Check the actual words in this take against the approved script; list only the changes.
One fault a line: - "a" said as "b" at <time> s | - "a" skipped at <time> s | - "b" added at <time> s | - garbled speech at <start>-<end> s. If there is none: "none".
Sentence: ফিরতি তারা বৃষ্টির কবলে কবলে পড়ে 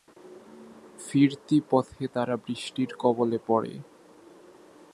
- "পথে" added at 1.7 s
- "কবলে" skipped at 3.4 s